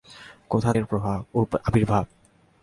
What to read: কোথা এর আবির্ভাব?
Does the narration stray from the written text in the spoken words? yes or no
no